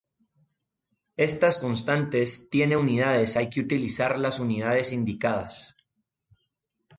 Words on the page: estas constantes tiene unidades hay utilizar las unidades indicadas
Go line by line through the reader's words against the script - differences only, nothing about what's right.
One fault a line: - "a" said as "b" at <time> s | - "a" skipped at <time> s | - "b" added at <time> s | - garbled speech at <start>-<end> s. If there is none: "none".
- "que" added at 3.5 s